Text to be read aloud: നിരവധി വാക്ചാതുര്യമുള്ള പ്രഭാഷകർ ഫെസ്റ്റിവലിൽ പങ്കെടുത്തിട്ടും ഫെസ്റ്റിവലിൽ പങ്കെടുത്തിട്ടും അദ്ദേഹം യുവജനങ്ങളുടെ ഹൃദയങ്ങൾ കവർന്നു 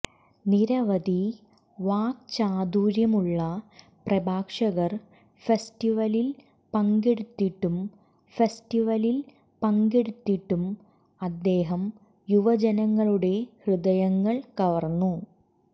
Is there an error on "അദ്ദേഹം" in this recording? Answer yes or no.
no